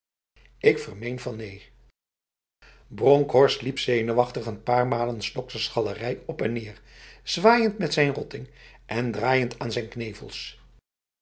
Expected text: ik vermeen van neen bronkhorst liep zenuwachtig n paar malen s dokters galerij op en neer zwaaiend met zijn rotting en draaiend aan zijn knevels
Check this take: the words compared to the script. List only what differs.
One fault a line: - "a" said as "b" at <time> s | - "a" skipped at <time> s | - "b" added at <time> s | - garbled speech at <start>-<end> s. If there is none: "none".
none